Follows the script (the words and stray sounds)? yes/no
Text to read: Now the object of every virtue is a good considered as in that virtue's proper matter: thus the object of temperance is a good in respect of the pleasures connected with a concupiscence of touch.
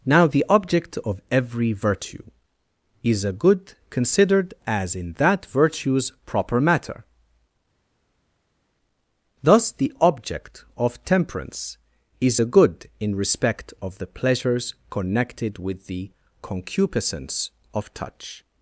no